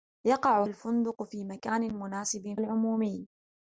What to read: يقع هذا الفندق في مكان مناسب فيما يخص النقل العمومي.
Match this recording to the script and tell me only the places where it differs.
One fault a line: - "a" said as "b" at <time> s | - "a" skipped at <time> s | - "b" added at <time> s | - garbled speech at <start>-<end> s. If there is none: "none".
- "هذا" skipped at 0.6 s
- "فيما يخص النقل" skipped at 2.6 s